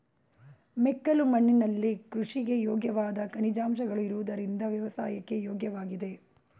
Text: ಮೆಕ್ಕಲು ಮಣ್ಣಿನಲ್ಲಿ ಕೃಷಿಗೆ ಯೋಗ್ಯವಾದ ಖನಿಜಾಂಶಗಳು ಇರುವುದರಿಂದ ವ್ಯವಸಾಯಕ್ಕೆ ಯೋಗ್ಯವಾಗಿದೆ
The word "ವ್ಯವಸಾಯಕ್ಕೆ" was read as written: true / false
true